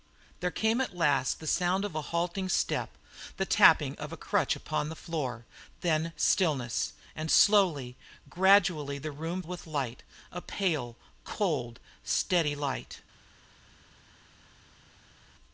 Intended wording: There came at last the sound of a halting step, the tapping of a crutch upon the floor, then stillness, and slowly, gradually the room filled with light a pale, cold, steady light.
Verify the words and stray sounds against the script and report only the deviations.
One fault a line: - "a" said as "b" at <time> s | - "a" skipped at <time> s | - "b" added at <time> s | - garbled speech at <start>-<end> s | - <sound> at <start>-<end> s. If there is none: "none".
- "filled" skipped at 9.4 s